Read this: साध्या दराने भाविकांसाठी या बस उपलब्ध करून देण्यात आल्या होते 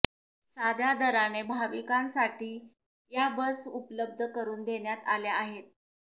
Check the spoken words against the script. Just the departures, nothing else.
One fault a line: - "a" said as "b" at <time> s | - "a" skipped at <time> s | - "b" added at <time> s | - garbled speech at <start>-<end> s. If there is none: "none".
- "होते" said as "आहेत" at 5.3 s